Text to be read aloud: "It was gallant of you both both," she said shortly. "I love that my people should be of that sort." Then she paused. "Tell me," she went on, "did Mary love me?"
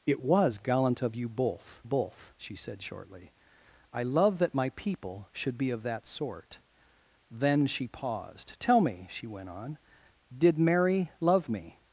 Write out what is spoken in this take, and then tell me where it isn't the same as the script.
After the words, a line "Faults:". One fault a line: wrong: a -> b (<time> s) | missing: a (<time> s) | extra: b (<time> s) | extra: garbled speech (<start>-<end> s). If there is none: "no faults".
"It was gallant of you both both," she said shortly. "I love that my people should be of that sort." Then she paused. "Tell me," she went on, "did Mary love me?"
Faults:
no faults